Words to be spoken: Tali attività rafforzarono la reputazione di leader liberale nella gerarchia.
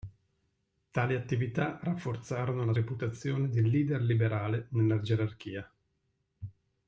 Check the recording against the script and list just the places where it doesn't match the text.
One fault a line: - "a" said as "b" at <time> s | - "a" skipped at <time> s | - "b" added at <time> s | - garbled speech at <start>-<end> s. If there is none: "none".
none